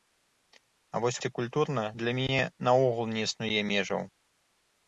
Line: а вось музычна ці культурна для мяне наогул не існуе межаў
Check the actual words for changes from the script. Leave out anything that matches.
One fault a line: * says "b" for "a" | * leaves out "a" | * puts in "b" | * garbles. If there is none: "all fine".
* leaves out "музычна"